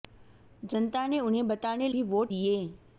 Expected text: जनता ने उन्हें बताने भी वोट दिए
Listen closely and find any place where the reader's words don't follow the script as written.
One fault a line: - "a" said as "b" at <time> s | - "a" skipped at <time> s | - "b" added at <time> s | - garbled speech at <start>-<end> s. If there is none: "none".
none